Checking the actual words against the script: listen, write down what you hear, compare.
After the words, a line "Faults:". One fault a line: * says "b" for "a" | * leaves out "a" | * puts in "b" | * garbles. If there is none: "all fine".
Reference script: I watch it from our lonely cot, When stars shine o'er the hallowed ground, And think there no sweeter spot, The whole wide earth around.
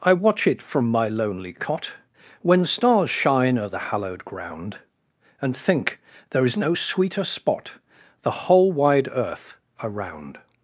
I watch it from my lonely cot, When stars shine o'er the hallowed ground, And think there is no sweeter spot, The whole wide earth around.
Faults:
* says "my" for "our"
* puts in "is"